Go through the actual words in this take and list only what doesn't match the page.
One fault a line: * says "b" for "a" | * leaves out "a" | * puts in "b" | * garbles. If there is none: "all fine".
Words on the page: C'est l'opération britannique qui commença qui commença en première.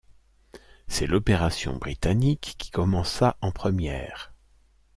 * leaves out "qui commença"